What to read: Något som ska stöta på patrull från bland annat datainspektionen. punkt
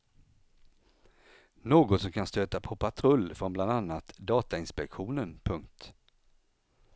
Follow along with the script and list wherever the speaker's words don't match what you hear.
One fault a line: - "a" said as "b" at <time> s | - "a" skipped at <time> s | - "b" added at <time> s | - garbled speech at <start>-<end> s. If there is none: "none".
- "ska" said as "kan" at 2.1 s